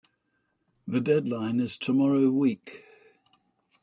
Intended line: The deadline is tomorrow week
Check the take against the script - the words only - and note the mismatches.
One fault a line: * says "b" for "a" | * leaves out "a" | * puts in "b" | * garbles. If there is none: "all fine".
all fine